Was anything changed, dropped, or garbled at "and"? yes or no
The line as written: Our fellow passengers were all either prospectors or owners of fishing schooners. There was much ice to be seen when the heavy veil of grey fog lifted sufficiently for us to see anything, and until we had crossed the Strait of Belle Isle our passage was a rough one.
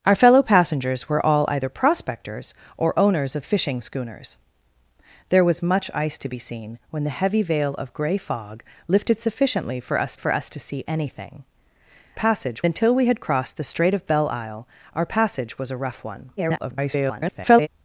yes